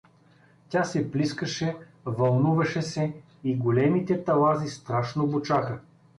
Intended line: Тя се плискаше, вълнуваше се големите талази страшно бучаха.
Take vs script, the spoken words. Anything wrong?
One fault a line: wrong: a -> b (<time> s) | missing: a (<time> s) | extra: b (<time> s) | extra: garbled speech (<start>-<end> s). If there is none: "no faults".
extra: и (3.4 s)